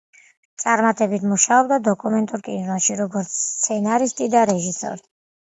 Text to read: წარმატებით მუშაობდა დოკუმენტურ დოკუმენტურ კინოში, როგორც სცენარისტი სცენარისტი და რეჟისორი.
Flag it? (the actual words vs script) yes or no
yes